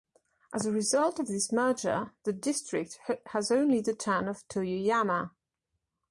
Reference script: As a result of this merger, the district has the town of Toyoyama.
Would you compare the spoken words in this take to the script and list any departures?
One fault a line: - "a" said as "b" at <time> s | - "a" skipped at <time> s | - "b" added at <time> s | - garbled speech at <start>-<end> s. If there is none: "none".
- "only" added at 3.5 s